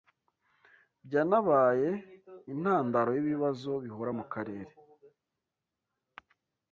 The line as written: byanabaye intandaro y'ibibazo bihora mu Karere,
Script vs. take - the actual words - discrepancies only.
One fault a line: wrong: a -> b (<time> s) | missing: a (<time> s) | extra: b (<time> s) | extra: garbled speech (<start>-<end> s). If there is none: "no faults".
no faults